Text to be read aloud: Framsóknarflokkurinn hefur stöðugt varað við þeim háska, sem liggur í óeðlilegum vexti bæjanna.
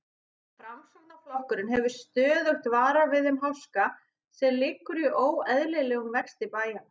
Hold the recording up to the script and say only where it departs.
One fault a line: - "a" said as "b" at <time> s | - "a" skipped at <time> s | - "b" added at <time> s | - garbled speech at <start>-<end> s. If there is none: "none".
none